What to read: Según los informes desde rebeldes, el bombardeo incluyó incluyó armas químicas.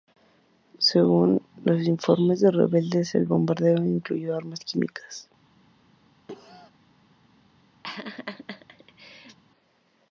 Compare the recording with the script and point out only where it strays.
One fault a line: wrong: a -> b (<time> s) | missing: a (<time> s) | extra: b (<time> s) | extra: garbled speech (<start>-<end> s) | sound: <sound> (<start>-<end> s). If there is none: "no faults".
wrong: desde -> de (2.4 s)
missing: incluyó (4.4 s)
sound: cough (6.3-6.7 s)
sound: laugh (7.8-9.4 s)